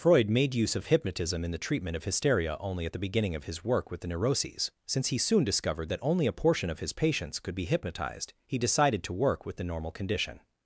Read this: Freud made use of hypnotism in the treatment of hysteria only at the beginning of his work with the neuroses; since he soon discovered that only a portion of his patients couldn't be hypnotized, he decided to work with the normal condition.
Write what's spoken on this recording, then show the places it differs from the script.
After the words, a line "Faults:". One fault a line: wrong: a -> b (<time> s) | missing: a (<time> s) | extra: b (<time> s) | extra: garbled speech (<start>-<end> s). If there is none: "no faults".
Freud made use of hypnotism in the treatment of hysteria only at the beginning of his work with the neuroses; since he soon discovered that only a portion of his patients could be hypnotized, he decided to work with the normal condition.
Faults:
wrong: couldn't -> could (7.4 s)